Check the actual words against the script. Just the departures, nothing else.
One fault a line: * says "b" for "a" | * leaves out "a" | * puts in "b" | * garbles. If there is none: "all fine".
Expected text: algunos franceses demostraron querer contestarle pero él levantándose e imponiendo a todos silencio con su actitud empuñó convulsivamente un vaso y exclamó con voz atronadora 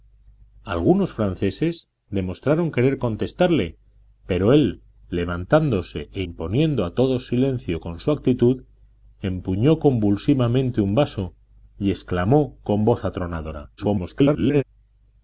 * garbles